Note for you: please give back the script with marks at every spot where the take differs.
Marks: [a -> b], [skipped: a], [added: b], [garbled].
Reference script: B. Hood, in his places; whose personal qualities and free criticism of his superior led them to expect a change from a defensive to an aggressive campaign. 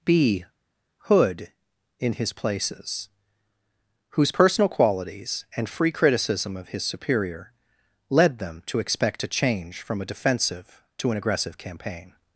B. Hood, in his places; whose personal qualities and free criticism of his superior led them to expect a change from a defensive to an aggressive campaign.